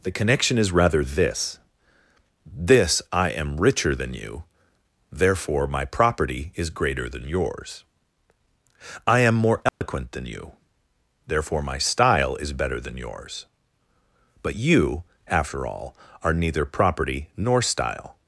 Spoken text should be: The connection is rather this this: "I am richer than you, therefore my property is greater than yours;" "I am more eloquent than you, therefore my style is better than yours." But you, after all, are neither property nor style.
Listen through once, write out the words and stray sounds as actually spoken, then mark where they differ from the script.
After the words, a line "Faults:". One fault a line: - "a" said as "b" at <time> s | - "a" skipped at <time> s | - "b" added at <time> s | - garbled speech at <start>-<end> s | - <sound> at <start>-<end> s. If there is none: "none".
The connection is rather this this: "I am richer than you, therefore my property is greater than yours;" "I am more eloquent than you, therefore my style is better than yours." But you, after all, are neither property nor style.
Faults:
- dropout at 9.7-9.8 s